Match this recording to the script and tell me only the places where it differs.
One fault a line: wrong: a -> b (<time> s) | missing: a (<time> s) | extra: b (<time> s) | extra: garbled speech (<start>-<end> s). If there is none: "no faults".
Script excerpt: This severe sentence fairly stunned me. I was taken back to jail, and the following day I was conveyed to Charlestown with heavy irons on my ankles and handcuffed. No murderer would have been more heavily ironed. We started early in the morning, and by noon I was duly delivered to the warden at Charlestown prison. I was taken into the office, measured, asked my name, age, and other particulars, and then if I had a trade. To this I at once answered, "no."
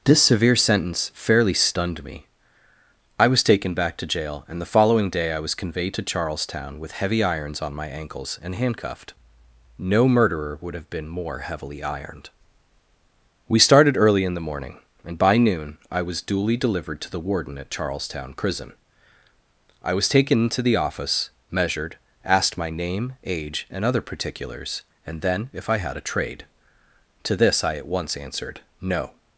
no faults